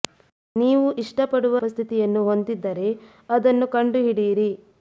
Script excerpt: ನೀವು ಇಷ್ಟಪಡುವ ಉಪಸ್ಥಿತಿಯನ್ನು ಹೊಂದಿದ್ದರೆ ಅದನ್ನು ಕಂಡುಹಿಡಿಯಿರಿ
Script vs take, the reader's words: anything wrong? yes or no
no